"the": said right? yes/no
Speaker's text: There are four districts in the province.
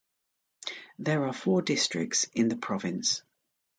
yes